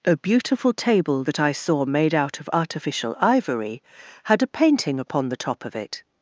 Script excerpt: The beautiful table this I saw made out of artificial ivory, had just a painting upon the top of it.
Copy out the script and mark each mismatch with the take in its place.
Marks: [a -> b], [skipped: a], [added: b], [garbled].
[The -> A] beautiful table [this -> that] I saw made out of artificial ivory, had [skipped: just] a painting upon the top of it.